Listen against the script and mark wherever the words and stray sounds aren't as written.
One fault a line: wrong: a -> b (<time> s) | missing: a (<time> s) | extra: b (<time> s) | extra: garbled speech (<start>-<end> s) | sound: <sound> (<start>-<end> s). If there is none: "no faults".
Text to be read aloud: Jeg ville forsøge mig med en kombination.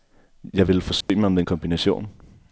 sound: dropout (1.0-1.1 s)